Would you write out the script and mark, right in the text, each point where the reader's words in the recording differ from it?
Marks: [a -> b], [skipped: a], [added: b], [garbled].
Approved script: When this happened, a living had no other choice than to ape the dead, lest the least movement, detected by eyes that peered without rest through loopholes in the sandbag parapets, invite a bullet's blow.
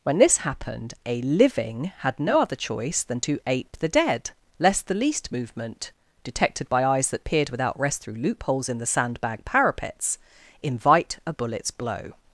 When this happened, a living had no other choice than to ape the dead, lest the least movement, detected by eyes that peered without rest through loopholes in the sandbag parapets, invite a bullet's blow.